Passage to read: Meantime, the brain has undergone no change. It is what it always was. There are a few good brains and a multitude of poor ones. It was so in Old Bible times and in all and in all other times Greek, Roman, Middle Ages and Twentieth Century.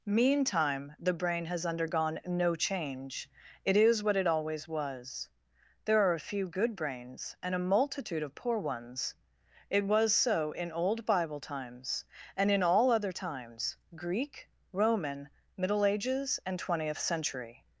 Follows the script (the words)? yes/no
no